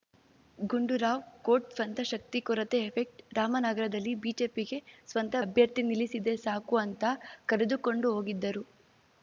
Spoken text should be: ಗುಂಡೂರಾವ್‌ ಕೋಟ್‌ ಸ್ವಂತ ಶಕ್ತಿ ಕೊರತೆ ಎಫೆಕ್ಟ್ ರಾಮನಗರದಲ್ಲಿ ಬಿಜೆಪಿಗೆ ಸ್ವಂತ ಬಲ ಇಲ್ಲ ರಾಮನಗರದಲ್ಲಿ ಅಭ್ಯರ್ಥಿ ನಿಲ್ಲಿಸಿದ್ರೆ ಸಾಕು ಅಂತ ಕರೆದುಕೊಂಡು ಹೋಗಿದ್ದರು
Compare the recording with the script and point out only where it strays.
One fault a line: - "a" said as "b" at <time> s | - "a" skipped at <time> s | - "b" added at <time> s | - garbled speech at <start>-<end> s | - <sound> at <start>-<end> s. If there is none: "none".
- "ಬಲ ಇಲ್ಲ ರಾಮನಗರದಲ್ಲಿ" skipped at 5.4 s